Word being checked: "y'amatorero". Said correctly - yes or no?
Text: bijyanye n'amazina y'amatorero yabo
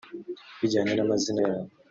no